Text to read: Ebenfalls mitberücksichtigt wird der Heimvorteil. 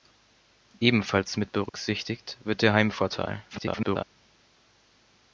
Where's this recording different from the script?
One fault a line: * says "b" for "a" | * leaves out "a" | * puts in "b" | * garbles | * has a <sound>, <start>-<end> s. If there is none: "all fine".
* has a dropout, 1.7-1.7 s
* garbles